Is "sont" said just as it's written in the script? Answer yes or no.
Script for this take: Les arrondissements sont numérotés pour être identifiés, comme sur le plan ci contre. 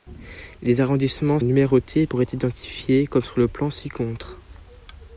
no